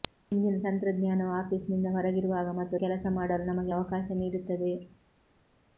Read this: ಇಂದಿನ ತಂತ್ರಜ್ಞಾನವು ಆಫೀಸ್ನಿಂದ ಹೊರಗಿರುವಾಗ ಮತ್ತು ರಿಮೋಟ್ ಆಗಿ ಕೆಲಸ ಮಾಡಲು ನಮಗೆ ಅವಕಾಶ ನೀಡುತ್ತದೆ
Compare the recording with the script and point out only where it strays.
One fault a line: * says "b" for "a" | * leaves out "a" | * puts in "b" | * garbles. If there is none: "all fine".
* leaves out "ರಿಮೋಟ್ ಆಗಿ"